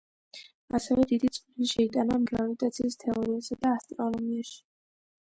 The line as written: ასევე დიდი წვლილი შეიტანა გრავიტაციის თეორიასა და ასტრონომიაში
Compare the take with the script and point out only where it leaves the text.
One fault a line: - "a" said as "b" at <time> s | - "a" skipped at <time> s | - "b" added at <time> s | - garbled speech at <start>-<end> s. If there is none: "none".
none